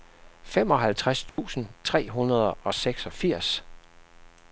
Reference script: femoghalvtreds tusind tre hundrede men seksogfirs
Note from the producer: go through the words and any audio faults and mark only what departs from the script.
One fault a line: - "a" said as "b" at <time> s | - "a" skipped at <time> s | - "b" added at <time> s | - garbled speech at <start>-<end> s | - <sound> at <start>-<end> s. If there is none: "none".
- dropout at 1.3-1.4 s
- "men" said as "og" at 2.6 s